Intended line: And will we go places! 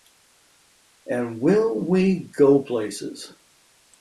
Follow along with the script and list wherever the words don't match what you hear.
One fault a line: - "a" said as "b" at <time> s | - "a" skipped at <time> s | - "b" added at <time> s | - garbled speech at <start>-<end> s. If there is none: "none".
none